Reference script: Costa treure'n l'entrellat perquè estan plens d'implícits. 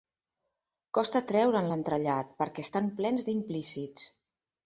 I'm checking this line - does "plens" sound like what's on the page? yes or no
yes